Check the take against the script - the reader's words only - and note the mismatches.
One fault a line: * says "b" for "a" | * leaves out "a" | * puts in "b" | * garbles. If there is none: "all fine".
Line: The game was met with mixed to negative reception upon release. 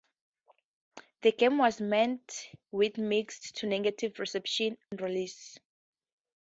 * leaves out "upon"